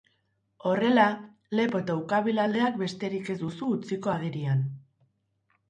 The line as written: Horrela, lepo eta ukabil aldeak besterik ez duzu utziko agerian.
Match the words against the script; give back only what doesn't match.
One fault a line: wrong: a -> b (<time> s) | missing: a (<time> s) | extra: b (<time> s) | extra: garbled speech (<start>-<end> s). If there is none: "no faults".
no faults